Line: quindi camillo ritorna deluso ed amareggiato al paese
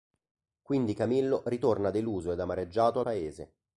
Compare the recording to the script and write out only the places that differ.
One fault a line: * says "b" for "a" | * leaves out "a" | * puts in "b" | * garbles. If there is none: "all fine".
* leaves out "al"